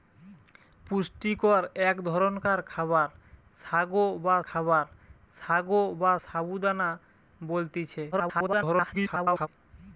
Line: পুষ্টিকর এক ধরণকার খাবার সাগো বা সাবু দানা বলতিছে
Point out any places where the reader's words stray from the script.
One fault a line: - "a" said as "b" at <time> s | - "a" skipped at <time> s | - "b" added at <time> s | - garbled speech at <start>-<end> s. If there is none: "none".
- "খাবার সাগো বা" added at 4.5 s
- garbled speech at 8.1-9.5 s